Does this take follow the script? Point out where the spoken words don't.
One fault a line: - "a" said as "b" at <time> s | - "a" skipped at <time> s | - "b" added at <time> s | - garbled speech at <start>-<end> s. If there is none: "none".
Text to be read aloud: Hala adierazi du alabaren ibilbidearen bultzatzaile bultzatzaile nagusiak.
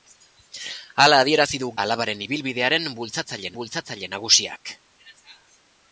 none